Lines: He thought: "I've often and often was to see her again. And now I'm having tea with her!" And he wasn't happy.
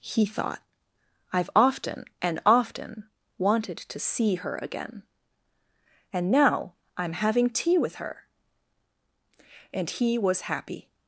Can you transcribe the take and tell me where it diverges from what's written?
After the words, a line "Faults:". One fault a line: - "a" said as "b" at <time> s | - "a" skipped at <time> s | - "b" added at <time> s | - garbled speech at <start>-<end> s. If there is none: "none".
He thought: "I've often and often wanted to see her again. And now I'm having tea with her!" And he was happy.
Faults:
- "was" said as "wanted" at 3.4 s
- "wasn't" said as "was" at 10.2 s